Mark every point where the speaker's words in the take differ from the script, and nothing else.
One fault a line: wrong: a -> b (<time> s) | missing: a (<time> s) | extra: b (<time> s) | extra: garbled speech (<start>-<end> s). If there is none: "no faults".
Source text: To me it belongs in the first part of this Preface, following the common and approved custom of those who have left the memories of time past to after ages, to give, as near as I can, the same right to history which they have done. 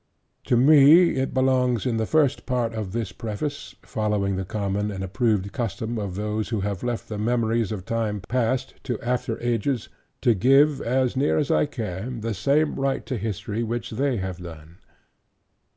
no faults